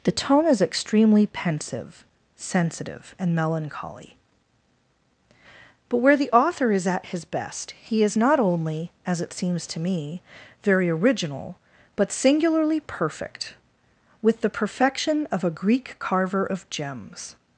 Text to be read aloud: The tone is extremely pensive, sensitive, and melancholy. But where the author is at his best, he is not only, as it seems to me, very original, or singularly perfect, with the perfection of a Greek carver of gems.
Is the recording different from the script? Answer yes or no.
yes